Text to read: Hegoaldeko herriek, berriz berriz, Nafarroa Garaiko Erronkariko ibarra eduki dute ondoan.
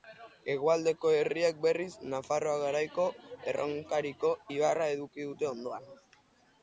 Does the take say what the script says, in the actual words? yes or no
no